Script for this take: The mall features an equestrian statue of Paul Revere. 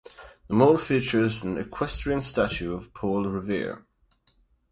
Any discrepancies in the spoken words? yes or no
no